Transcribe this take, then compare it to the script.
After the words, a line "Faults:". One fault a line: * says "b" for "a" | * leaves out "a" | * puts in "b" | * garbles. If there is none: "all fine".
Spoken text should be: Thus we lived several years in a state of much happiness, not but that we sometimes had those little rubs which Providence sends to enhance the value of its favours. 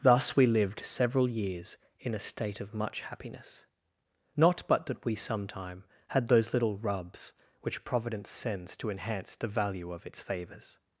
Thus we lived several years in a state of much happiness, not but that we sometime had those little rubs which Providence sends to enhance the value of its favours.
Faults:
* says "sometime" for "sometimes"